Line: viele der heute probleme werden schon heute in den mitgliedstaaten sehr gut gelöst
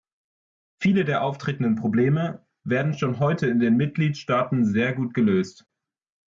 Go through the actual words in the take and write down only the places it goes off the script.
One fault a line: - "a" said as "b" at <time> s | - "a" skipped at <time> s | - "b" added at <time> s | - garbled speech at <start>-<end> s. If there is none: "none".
- "heute" said as "auftretenden" at 1.2 s